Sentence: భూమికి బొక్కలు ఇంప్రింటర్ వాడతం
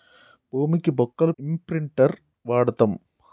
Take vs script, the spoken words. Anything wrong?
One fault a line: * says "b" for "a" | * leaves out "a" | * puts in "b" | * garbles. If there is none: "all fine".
all fine